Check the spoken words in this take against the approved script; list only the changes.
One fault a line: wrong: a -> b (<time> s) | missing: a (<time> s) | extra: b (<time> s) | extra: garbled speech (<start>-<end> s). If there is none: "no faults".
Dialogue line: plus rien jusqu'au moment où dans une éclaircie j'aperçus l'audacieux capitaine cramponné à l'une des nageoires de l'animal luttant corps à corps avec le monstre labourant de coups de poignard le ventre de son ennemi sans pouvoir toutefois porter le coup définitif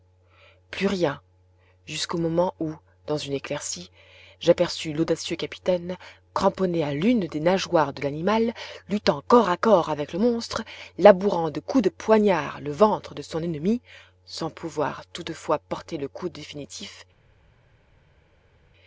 no faults